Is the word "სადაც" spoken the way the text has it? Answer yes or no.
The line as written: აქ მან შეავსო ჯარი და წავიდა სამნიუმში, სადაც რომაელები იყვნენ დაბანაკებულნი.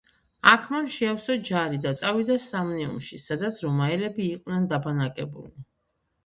yes